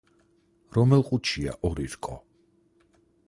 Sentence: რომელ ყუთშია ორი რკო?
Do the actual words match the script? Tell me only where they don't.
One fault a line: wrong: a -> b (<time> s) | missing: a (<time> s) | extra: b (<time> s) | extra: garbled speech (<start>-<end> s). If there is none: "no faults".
no faults